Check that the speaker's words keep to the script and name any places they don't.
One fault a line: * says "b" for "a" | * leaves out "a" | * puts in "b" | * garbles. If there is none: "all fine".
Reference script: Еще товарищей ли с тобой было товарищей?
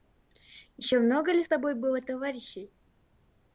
* says "много" for "товарищей"